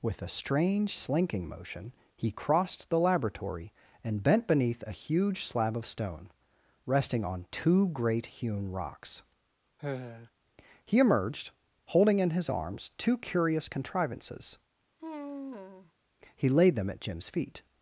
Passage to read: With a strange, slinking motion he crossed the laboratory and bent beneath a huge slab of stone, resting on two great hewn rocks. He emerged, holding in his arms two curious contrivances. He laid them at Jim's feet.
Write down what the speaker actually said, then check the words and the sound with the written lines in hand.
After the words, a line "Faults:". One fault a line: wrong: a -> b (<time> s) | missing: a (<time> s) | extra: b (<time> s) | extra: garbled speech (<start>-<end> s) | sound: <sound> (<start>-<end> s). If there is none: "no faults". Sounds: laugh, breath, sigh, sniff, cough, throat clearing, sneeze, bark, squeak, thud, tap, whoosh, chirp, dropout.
With a strange, slinking motion he crossed the laboratory and bent beneath a huge slab of stone, resting on two great hewn rocks. He emerged, holding in his arms two curious contrivances. He laid them at Jim's feet.
Faults:
sound: sigh (9.8-10.3 s)
sound: sigh (15.0-15.9 s)